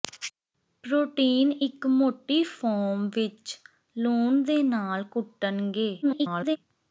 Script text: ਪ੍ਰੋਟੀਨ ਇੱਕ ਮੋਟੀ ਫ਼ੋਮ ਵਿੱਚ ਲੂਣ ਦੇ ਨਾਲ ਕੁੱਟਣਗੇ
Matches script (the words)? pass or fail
fail